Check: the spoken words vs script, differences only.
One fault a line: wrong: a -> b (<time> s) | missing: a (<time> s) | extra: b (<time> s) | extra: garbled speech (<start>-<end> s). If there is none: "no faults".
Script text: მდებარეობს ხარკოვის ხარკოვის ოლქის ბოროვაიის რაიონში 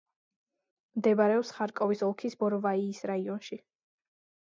missing: ხარკოვის (2.0 s)